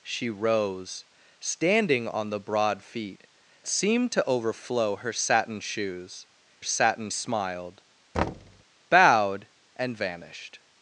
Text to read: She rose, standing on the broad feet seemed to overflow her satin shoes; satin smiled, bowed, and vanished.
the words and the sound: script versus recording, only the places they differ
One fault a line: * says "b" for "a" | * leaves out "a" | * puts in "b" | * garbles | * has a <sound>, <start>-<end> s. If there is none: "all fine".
* has a thud, 8.1-8.6 s